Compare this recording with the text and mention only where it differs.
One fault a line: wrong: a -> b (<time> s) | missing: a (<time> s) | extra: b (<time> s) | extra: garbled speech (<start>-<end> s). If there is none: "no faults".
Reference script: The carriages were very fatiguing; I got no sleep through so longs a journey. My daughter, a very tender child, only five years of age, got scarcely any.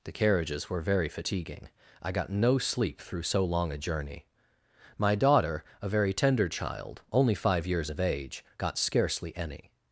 wrong: longs -> long (3.5 s)